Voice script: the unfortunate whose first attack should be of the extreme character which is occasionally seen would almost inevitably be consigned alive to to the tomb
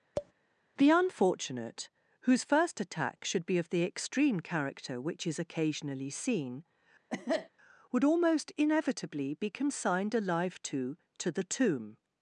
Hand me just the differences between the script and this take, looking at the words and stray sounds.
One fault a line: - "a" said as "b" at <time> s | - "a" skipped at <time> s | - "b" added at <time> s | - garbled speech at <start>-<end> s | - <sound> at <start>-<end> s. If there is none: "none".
- tap at 0.2-0.3 s
- cough at 7.1-7.5 s